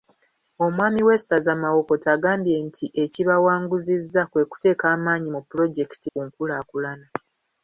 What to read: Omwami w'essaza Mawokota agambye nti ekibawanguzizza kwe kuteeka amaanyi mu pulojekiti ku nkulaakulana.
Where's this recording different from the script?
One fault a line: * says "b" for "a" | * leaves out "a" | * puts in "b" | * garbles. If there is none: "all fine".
all fine